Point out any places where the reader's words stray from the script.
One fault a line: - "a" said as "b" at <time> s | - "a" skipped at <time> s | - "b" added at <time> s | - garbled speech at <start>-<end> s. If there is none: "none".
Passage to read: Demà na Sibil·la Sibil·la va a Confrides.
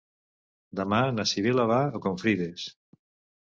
- "Sibil·la" skipped at 1.7 s